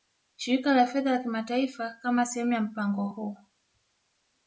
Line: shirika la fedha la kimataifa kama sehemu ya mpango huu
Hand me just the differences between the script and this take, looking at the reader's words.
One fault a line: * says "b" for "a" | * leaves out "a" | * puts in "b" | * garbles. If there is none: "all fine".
all fine